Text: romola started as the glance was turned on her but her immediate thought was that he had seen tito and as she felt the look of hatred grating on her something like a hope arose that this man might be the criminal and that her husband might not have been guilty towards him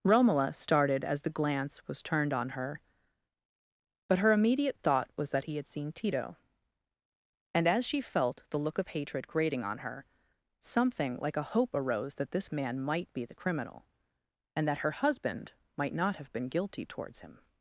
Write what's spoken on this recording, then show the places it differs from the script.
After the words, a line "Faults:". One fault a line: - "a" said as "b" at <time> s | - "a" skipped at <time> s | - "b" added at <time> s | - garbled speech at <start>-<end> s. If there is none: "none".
romola started as the glance was turned on her but her immediate thought was that he had seen tito and as she felt the look of hatred grating on her something like a hope arose that this man might be the criminal and that her husband might not have been guilty towards him
Faults:
none